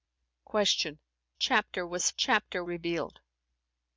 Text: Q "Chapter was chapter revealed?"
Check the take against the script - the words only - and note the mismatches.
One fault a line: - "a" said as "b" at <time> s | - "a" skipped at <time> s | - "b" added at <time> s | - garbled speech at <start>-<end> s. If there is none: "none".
none